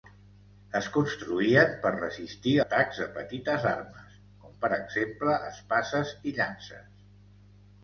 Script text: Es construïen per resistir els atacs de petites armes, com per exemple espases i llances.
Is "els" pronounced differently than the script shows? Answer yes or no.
yes